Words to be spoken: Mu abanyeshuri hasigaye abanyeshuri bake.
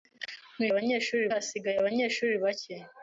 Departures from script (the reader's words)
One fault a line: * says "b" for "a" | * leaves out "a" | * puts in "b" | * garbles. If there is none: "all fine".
all fine